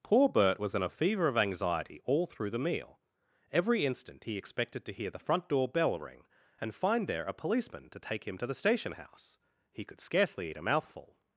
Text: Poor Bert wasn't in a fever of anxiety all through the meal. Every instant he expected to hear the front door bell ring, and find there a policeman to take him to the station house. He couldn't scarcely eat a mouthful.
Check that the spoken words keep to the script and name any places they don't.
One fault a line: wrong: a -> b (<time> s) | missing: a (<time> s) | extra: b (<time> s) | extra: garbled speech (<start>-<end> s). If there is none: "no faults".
wrong: wasn't -> was (0.6 s)
wrong: couldn't -> could (9.8 s)